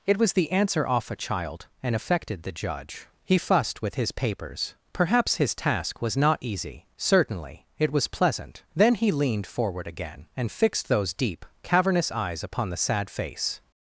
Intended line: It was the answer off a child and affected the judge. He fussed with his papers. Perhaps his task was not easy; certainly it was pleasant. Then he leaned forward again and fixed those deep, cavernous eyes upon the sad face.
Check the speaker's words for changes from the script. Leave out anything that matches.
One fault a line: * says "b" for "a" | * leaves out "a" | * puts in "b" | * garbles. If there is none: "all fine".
all fine